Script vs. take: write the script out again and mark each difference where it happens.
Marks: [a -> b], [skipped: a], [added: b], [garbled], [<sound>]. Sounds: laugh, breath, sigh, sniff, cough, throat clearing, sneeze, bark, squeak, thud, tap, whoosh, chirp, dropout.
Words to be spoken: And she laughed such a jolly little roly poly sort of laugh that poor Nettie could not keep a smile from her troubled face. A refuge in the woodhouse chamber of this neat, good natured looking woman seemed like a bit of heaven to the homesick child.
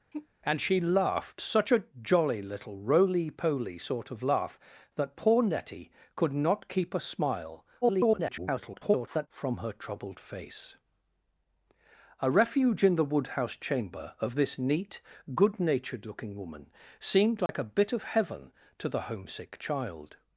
[sigh] And she laughed such a jolly little roly poly sort of laugh that poor Nettie could not keep a smile [garbled] from her troubled face. A refuge in the woodhouse chamber of this neat, good natured looking woman seemed like [dropout] a bit of heaven to the homesick child.